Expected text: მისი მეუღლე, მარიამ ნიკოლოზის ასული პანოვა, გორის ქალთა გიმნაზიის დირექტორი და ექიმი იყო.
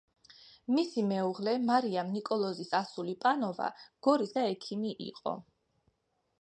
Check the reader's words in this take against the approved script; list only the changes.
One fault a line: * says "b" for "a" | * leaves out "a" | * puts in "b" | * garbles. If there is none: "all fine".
* leaves out "ქალთა გიმნაზიის დირექტორი"